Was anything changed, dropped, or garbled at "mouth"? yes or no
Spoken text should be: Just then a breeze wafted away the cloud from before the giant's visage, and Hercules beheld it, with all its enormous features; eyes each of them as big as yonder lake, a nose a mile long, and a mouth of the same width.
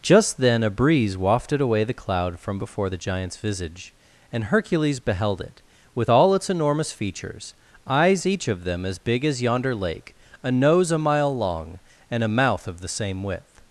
no